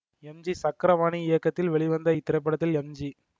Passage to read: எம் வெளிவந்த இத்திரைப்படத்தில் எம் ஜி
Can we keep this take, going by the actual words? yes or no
no